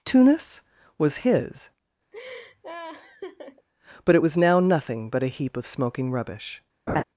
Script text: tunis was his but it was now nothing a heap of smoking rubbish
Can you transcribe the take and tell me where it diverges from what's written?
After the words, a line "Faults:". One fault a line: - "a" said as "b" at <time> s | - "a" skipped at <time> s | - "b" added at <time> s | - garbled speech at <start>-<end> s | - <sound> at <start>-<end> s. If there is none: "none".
tunis was his but it was now nothing but a heap of smoking rubbish
Faults:
- laugh at 2.1-3.7 s
- "but" added at 5.1 s
- laugh at 6.9-7.0 s